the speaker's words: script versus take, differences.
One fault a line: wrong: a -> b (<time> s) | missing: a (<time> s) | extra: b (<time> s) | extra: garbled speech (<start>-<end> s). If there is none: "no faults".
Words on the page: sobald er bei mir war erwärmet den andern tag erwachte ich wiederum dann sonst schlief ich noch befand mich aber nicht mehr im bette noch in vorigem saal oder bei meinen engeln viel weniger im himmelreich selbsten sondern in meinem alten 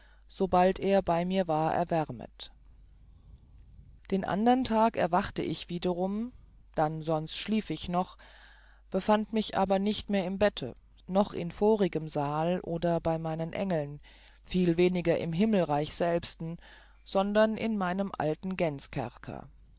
no faults